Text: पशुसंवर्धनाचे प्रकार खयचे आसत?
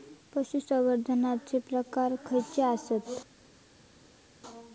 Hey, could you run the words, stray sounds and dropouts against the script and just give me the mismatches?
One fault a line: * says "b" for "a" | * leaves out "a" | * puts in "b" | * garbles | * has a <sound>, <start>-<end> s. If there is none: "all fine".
all fine